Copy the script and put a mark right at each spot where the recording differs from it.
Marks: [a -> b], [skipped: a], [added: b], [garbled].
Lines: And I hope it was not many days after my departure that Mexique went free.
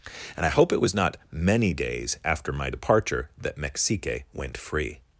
And I hope it was not many days after my departure that Mexique went free.